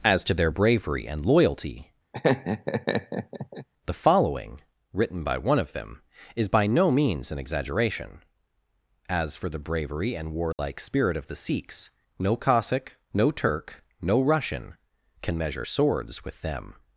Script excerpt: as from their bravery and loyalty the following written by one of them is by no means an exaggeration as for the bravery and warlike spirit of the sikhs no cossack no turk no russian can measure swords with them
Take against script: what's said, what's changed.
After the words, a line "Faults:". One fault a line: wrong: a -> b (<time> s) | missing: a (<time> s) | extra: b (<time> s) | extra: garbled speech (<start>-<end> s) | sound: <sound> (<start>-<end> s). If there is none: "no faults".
as to their bravery and loyalty the following written by one of them is by no means an exaggeration as for the bravery and warlike spirit of the sikhs no cossack no turk no russian can measure swords with them
Faults:
wrong: from -> to (0.2 s)
sound: laugh (2.1-3.7 s)
sound: dropout (10.5-10.6 s)